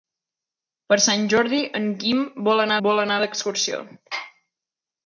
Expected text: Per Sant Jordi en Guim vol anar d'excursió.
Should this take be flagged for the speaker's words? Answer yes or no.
yes